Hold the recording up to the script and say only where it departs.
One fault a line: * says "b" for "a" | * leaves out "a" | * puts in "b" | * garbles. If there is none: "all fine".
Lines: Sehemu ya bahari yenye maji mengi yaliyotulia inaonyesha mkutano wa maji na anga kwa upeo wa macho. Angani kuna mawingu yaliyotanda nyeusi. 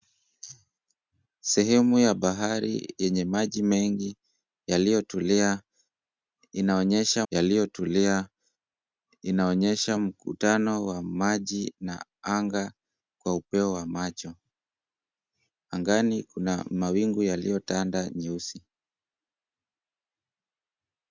* puts in "yaliyotulia inaonyesha"